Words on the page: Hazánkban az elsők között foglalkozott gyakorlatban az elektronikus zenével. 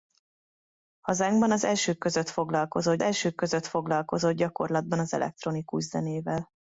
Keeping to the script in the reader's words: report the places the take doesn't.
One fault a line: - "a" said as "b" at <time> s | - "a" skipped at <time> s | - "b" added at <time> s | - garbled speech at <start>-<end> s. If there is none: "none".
- "elsők között foglalkozott" added at 3.0 s